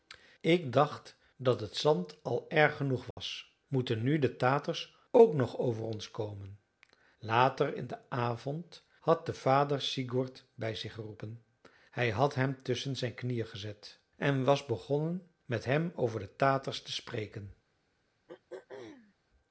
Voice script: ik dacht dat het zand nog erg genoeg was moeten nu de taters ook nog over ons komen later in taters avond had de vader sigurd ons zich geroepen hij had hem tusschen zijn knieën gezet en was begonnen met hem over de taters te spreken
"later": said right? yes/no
yes